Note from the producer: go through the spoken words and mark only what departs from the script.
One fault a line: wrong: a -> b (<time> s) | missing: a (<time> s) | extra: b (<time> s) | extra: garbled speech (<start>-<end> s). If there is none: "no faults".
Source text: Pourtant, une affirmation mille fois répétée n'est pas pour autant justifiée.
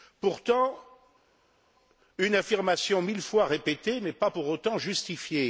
no faults